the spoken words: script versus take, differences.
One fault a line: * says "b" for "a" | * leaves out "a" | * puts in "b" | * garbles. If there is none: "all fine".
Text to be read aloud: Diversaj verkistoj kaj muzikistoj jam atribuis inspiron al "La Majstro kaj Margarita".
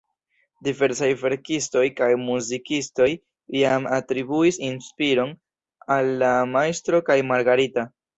all fine